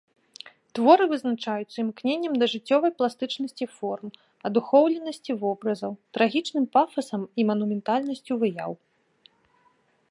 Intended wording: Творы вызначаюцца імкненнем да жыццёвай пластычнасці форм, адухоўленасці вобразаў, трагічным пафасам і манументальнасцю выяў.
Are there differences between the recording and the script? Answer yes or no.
no